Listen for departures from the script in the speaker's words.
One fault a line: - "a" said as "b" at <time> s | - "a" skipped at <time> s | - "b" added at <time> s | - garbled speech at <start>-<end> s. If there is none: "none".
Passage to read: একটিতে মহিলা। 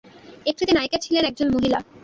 - "নায়িকা ছিলেন একজন" added at 0.7 s